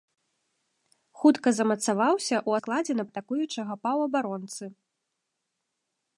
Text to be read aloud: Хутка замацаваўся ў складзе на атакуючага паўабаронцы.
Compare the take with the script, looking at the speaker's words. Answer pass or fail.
pass